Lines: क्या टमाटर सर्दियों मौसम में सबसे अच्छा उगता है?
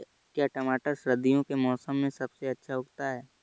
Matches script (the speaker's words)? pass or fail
fail